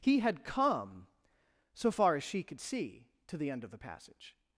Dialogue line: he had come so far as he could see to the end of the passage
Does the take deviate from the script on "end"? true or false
false